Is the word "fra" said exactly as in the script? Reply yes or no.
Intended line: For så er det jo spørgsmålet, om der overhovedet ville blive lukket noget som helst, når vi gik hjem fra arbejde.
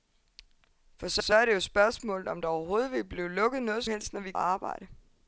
no